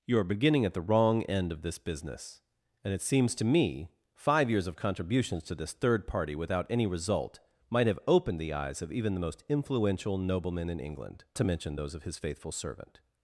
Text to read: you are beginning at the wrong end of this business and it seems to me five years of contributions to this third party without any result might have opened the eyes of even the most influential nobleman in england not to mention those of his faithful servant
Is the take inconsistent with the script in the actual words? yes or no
yes